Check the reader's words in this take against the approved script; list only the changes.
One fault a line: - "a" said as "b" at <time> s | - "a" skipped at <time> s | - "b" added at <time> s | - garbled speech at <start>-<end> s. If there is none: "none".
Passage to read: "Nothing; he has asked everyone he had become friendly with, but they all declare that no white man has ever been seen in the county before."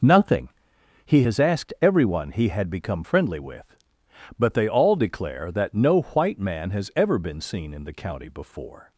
none